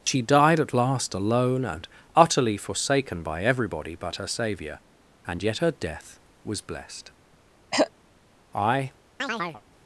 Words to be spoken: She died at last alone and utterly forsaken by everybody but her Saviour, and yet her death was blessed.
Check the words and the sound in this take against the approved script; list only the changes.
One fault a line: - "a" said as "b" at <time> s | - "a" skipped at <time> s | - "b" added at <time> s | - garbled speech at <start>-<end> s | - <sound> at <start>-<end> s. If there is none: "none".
- throat clearing at 7.7-7.9 s
- "I" added at 8.5 s
- chirp at 9.2-9.6 s